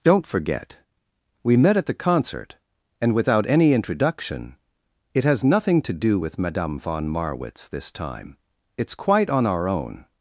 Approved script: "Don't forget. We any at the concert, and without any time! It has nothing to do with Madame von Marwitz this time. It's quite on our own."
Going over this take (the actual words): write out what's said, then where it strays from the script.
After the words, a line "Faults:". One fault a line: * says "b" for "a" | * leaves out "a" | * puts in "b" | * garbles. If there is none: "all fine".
"Don't forget. We met at the concert, and without any introduction! It has nothing to do with Madame von Marwitz this time. It's quite on our own."
Faults:
* says "met" for "any"
* says "introduction" for "time"